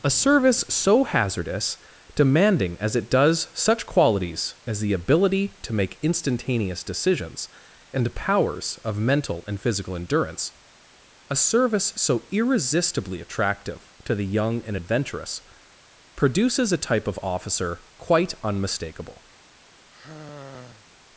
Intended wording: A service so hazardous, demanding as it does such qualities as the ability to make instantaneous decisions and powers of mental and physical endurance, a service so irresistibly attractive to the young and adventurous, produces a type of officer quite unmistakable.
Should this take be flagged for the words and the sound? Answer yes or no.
yes